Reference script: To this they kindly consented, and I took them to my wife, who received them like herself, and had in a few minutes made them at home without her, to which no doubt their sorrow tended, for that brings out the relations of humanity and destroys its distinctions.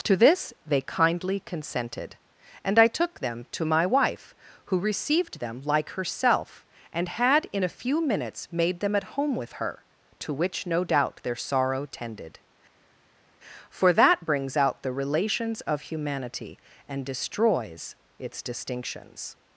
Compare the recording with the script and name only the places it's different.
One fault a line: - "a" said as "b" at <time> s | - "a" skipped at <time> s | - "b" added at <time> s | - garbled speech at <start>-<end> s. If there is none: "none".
- "without" said as "with" at 9.3 s